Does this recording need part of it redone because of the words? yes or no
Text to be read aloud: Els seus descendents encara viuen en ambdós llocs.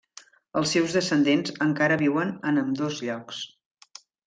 no